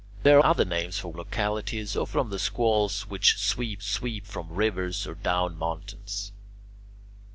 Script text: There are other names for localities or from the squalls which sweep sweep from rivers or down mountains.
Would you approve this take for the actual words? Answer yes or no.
yes